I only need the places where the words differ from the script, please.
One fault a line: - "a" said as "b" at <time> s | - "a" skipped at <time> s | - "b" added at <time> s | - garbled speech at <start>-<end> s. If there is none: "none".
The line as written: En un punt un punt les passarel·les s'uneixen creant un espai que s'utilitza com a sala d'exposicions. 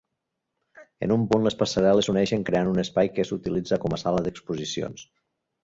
- "un punt" skipped at 1.5 s